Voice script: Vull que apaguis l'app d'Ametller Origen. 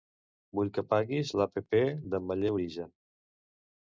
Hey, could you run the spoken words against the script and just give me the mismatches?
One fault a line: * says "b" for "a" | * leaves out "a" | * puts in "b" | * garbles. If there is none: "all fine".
all fine